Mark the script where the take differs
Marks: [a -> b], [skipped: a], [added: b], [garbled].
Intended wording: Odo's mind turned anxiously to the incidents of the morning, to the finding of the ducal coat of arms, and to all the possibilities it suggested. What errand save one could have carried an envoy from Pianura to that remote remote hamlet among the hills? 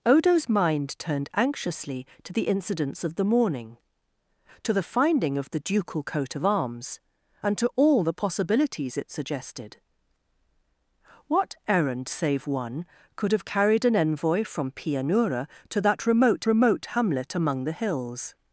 Odo's mind turned anxiously to the incidents of the morning, to the finding of the ducal coat of arms, and to all the possibilities it suggested. What errand save one could have carried an envoy from Pianura to that remote remote hamlet among the hills?